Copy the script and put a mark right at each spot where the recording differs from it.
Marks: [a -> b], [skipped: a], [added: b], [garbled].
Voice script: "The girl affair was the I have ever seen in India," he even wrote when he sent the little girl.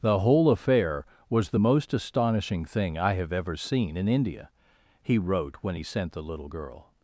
"The [girl -> whole] affair was the [added: most astonishing thing] I have ever seen in India," he [skipped: even] wrote when he sent the little girl.